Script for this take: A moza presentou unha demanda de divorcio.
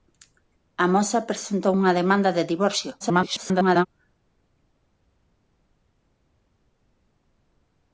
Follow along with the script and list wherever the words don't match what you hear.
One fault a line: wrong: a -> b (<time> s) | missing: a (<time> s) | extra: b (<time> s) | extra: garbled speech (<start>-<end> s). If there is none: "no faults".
extra: garbled speech (3.0-3.9 s)